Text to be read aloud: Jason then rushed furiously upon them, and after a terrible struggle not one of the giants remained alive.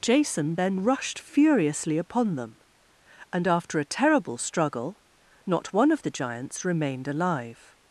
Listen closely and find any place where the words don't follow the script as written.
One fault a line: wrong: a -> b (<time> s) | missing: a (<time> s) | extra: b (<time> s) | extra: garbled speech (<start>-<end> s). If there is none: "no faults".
no faults